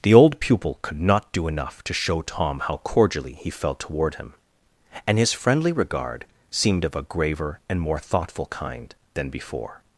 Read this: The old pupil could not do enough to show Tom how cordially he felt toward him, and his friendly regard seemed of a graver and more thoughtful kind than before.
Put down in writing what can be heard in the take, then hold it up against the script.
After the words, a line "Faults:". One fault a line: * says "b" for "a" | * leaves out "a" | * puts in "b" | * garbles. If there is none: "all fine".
The old pupil could not do enough to show Tom how cordially he felt toward him, and his friendly regard seemed of a graver and more thoughtful kind than before.
Faults:
all fine